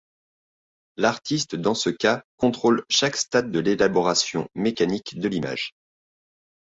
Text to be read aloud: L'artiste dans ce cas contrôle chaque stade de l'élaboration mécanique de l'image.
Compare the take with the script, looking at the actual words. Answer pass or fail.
pass